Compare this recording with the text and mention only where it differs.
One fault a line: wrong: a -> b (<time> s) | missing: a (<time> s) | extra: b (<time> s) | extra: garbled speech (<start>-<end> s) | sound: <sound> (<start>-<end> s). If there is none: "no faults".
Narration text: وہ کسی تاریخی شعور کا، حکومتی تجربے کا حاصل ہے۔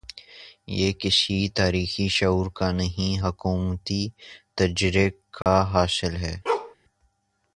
wrong: وہ -> یہ (0.7 s)
extra: نہیں (2.7 s)
sound: dropout (5.4-5.5 s)
sound: bark (6.5-6.8 s)